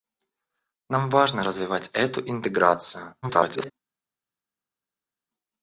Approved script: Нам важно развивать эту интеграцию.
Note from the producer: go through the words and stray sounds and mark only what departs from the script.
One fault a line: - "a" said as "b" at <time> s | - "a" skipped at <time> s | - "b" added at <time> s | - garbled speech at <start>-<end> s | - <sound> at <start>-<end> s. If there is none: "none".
- garbled speech at 3.2-3.7 s